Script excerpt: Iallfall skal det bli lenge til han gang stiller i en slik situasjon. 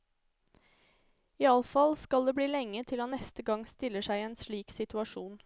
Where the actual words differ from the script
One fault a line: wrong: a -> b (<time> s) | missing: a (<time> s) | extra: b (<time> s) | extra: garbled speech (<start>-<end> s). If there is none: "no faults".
extra: neste (3.1 s)
extra: seg (4.0 s)